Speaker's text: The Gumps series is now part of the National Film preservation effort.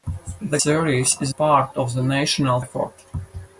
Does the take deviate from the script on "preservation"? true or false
true